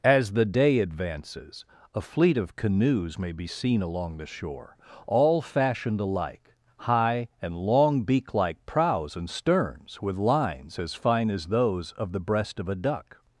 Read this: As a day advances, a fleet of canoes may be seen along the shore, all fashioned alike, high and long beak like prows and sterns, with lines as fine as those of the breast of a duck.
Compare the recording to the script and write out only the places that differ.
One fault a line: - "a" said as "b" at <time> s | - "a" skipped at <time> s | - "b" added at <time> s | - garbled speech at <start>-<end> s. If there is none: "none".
- "a" said as "the" at 0.3 s